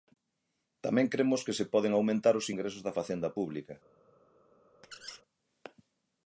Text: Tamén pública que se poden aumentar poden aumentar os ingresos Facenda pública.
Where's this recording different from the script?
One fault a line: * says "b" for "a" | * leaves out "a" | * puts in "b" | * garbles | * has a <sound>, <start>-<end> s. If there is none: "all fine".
* says "cremos" for "pública"
* leaves out "poden aumentar"
* puts in "da"
* has a squeak, 4.8-5.2 s